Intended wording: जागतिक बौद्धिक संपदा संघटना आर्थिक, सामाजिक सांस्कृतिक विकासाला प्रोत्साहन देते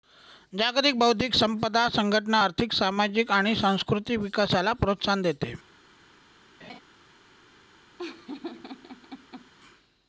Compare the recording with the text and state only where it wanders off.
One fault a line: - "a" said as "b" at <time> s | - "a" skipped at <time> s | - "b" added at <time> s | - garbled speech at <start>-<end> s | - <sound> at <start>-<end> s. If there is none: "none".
- "आणि" added at 3.3 s
- laugh at 6.6-6.8 s
- laugh at 8.0-9.5 s